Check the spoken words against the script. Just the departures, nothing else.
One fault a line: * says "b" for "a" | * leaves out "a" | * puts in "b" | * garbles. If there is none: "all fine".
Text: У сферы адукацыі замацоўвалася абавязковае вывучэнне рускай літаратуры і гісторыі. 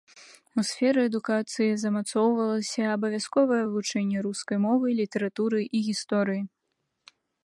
* puts in "мовы"